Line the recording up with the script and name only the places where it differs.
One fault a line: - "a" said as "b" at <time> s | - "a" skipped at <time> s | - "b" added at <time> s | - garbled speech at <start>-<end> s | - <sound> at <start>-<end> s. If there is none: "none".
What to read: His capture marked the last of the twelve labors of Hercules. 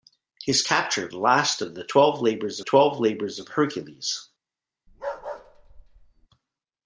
- "marked" skipped at 1.1 s
- "twelve labors" added at 2.6 s
- bark at 4.9-6.3 s